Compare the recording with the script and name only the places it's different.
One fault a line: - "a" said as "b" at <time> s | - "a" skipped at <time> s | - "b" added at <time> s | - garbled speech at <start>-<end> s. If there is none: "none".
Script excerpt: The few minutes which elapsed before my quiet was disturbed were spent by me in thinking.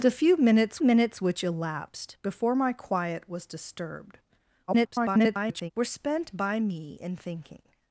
- "minutes" added at 0.8 s
- garbled speech at 4.7-5.7 s